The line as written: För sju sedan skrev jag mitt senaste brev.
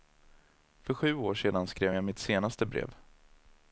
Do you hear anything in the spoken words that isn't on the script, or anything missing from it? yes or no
yes